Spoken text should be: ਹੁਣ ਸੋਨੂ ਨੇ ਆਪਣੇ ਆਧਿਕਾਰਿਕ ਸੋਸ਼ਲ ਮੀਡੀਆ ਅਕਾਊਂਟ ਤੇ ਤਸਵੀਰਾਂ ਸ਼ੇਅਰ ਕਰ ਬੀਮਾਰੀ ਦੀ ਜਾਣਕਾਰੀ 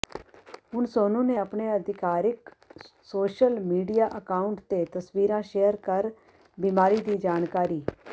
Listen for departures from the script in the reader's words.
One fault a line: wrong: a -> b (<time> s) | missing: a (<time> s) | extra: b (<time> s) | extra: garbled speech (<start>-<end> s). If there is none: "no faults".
no faults